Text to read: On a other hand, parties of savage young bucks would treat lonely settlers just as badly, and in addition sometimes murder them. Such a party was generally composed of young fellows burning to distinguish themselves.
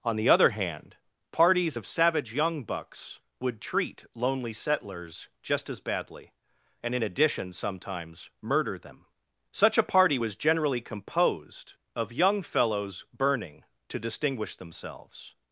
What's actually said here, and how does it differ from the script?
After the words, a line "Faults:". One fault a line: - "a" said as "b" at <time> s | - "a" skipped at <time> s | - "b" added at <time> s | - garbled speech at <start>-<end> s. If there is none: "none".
On the other hand, parties of savage young bucks would treat lonely settlers just as badly, and in addition sometimes murder them. Such a party was generally composed of young fellows burning to distinguish themselves.
Faults:
- "a" said as "the" at 0.1 s